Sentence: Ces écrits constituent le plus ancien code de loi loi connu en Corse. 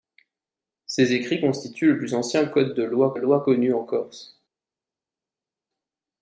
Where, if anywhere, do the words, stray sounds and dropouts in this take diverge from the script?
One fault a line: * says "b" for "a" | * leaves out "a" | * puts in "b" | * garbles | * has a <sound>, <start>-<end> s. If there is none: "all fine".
all fine